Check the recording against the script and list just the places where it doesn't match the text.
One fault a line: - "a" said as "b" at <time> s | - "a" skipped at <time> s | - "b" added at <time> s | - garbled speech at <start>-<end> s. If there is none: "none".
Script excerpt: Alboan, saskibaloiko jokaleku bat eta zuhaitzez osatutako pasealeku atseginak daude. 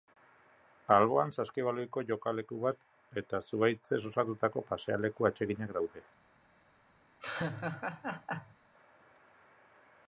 none